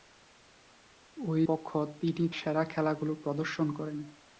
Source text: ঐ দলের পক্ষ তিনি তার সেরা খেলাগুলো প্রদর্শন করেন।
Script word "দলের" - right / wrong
wrong